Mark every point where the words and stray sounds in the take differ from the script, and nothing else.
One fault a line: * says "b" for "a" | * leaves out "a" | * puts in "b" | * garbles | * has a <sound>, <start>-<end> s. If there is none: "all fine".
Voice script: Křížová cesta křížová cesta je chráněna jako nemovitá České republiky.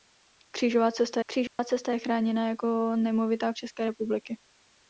* has a dropout, 1.5-1.6 s